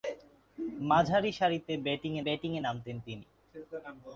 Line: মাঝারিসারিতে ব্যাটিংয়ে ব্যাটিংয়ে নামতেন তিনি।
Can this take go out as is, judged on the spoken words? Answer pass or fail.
pass